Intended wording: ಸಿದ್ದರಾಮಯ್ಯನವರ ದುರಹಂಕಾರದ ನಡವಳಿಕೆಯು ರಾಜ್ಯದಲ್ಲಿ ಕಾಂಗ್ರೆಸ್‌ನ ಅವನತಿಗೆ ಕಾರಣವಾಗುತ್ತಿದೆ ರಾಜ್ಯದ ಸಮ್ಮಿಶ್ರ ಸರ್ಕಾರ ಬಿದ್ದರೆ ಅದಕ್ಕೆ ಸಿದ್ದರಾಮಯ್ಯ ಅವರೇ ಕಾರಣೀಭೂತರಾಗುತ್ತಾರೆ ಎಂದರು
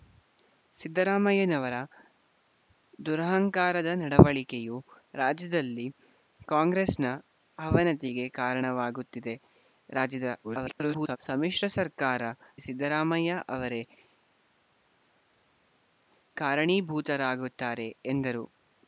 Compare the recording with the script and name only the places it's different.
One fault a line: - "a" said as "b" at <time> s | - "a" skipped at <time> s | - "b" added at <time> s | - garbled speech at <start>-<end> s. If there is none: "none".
- garbled speech at 10.4-11.2 s
- "ಬಿದ್ದರೆ ಅದಕ್ಕೆ" skipped at 12.2 s